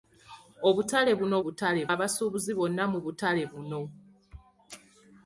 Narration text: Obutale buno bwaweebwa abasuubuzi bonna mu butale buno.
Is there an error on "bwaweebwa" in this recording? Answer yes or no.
yes